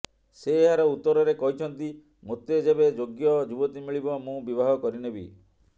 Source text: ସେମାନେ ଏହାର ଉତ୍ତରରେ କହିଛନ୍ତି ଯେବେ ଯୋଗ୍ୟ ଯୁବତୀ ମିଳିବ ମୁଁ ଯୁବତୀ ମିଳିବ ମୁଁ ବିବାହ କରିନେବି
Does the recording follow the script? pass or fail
fail